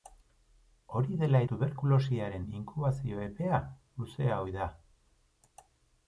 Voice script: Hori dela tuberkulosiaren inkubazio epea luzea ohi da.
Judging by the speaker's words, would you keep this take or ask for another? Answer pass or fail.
pass